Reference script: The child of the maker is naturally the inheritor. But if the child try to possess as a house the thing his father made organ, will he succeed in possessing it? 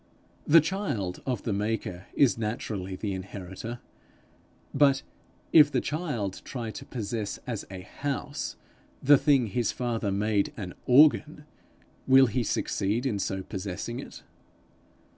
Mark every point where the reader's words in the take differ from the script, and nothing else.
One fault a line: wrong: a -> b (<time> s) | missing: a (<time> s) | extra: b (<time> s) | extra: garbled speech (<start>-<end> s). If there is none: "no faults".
extra: an (10.6 s)
extra: so (13.2 s)